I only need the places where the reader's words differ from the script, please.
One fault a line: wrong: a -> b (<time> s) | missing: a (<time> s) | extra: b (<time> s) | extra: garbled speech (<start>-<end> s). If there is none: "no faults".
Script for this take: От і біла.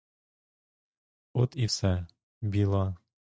extra: все (1.6 s)